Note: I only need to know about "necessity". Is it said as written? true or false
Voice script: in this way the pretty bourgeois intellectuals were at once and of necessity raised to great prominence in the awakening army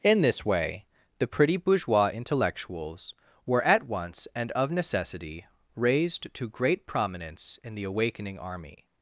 true